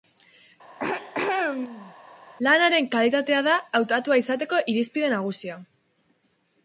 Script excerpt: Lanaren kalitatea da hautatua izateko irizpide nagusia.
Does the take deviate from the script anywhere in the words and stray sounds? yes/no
yes